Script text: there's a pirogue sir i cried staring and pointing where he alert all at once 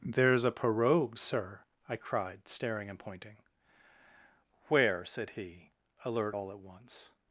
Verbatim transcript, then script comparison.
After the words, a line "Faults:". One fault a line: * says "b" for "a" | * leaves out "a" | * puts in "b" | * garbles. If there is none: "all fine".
there's a pirogue sir i cried staring and pointing where said he alert all at once
Faults:
* puts in "said"